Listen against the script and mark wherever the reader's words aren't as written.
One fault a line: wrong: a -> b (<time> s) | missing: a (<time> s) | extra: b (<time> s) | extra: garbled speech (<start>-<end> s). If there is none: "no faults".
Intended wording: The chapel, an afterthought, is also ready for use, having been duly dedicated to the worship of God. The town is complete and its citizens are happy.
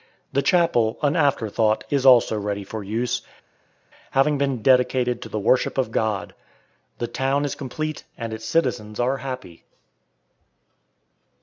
missing: duly (4.6 s)